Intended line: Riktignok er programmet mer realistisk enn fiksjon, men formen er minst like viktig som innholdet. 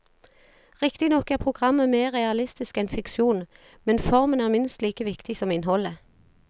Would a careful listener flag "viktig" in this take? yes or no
no